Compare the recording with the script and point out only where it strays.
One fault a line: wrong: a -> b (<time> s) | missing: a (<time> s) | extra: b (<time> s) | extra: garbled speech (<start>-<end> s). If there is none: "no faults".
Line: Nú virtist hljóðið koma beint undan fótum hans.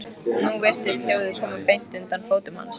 no faults